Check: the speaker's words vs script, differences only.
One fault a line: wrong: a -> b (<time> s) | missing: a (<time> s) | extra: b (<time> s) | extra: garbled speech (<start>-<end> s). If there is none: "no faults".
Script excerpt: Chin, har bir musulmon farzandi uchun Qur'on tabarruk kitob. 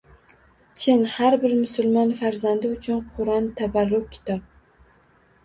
no faults